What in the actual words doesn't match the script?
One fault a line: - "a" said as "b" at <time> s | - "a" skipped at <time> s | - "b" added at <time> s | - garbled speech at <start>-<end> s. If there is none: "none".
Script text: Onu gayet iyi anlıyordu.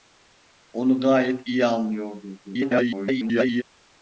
- garbled speech at 2.4-3.6 s